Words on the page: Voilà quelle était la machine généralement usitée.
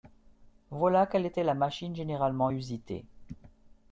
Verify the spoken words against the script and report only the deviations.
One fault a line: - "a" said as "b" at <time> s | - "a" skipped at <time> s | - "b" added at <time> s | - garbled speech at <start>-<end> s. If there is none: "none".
none